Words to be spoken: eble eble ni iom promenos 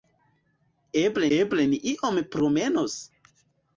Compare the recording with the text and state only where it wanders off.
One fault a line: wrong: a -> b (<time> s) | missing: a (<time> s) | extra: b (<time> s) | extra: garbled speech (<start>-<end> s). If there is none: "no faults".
no faults